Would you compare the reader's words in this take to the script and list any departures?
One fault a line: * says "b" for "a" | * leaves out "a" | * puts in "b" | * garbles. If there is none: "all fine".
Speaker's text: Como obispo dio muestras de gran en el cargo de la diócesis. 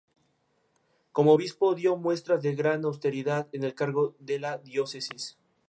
* puts in "austeridad"